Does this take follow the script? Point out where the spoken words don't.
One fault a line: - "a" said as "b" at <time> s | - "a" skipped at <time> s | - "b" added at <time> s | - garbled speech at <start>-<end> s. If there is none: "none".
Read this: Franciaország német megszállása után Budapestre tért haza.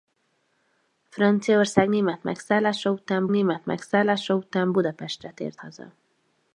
- "német megszállása után" added at 3.3 s